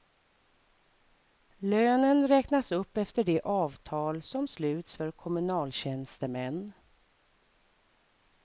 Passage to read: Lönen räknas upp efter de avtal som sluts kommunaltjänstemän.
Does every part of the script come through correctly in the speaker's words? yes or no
no